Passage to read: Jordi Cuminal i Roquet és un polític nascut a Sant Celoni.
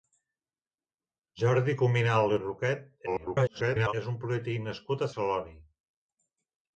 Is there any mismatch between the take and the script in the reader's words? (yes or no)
yes